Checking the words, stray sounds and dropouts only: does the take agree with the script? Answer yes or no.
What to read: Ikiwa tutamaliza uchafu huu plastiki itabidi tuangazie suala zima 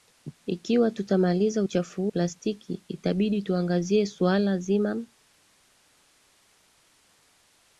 yes